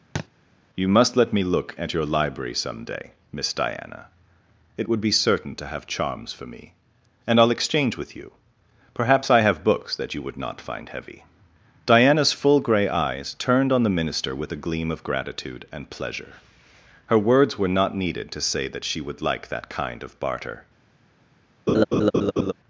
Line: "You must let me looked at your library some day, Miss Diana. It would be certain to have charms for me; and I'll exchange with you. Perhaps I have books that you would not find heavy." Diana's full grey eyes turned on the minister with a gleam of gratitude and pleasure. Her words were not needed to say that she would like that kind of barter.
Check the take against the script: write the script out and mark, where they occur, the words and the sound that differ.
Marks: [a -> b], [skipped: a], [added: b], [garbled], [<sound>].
[thud] "You must let me [looked -> look] at your library some day, Miss Diana. It would be certain to have charms for me; and I'll exchange with you. Perhaps I have books that you would not find heavy." Diana's full grey eyes turned on the minister with a gleam of gratitude and pleasure. Her words were not needed to say that she would like that kind of barter. [laugh]